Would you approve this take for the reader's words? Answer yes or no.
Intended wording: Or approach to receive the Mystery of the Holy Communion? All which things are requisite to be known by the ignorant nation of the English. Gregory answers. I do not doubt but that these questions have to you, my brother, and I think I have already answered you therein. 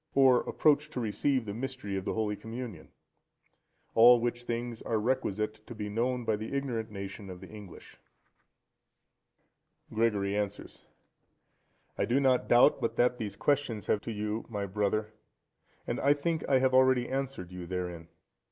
yes